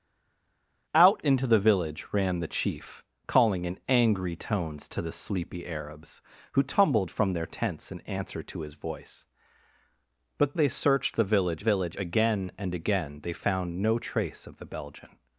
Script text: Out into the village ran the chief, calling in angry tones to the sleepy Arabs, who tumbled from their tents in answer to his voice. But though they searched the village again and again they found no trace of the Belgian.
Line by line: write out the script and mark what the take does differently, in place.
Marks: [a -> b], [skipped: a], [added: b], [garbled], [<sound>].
Out into the village ran the chief, calling in angry tones to the sleepy Arabs, who tumbled from their tents in answer to his voice. But [skipped: though] they searched the village [added: village] again and again they found no trace of the Belgian.